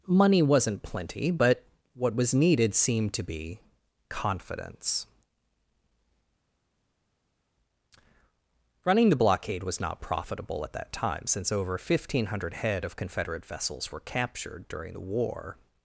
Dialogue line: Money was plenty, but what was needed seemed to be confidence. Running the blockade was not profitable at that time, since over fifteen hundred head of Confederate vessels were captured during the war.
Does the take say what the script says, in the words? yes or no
no